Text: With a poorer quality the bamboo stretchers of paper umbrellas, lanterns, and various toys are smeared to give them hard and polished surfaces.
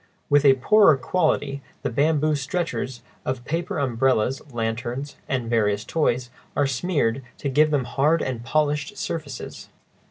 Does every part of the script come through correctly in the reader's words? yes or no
yes